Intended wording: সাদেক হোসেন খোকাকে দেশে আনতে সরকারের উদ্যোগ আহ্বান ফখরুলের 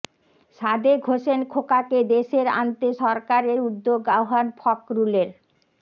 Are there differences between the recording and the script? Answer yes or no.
no